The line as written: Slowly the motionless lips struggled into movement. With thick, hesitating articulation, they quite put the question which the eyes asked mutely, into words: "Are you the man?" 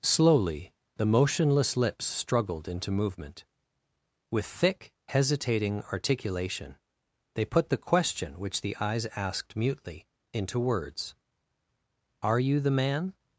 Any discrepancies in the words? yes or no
yes